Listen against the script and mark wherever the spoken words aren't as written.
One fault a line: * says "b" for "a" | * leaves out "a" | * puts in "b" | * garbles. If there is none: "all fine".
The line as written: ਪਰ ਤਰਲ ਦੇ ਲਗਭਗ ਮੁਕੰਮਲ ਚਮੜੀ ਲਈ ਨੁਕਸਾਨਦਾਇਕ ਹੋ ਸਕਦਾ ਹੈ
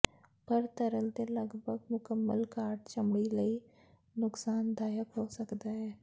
* puts in "ਘਾਟ"